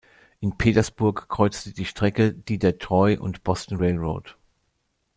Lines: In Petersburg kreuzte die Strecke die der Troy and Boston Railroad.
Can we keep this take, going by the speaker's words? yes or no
yes